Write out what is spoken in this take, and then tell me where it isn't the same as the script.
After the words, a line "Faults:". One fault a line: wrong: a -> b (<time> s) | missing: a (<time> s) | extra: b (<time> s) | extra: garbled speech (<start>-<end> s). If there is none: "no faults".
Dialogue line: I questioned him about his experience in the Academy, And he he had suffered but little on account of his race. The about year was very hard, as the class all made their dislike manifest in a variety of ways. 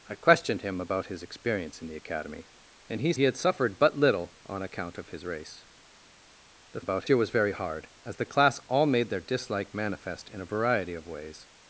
I questioned him about his experience in the Academy, And he he had suffered but little on account of his race. The about year was very hard, as the class all made their dislike manifest in a variety of ways.
Faults:
no faults